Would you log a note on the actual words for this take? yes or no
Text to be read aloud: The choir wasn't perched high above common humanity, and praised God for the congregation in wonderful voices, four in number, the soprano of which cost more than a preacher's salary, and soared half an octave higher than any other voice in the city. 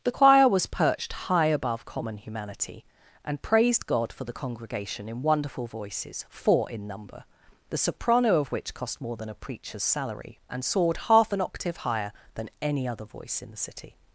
yes